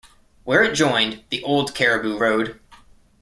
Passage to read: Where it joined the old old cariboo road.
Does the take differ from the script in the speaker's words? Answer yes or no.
yes